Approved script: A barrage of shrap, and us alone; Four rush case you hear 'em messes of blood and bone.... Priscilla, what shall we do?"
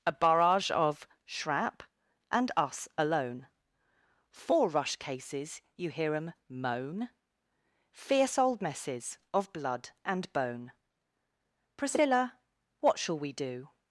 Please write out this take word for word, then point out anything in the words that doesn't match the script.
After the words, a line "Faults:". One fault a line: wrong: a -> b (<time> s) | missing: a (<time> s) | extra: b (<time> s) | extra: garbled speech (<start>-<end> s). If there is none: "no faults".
A barrage of shrap, and us alone; Four rush cases you hear 'em moan? Fierce old messes of blood and bone.... Priscilla, what shall we do?"
Faults:
wrong: case -> cases (5.0 s)
extra: moan Fierce old (6.5 s)